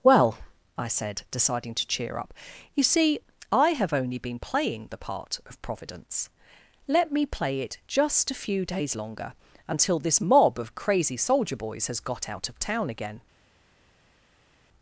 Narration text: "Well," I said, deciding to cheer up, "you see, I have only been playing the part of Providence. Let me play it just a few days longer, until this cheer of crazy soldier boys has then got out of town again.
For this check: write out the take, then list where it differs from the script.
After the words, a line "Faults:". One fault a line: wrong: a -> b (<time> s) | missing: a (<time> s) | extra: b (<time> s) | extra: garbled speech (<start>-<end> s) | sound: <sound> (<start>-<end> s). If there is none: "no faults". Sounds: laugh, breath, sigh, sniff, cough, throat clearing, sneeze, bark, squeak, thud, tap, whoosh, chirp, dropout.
"Well," I said, deciding to cheer up, "you see, I have only been playing the part of Providence. Let me play it just a few days longer, until this mob of crazy soldier boys has got out of town again.
Faults:
wrong: cheer -> mob (10.2 s)
missing: then (12.0 s)